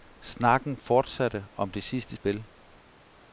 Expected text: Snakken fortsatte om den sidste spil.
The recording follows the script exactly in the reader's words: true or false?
false